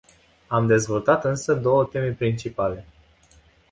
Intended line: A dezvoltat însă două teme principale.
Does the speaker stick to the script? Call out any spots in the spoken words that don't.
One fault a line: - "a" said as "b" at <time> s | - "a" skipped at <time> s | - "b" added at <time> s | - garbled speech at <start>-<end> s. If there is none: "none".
- "A" said as "Am" at 0.5 s